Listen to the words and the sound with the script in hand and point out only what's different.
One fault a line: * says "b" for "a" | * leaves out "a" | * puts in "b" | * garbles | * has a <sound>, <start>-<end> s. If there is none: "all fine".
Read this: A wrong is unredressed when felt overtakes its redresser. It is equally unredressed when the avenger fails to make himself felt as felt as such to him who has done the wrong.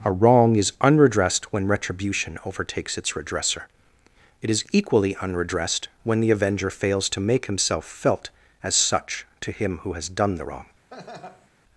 * says "retribution" for "felt"
* leaves out "felt as"
* has a laugh, 10.9-11.5 s